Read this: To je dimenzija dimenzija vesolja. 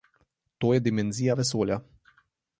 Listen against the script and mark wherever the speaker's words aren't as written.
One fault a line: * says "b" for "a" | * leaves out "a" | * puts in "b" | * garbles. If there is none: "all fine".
* leaves out "dimenzija"